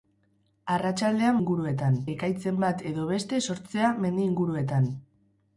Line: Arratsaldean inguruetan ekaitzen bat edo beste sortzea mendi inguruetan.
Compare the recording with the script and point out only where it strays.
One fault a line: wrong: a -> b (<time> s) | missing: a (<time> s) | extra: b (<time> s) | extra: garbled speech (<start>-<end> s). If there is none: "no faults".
no faults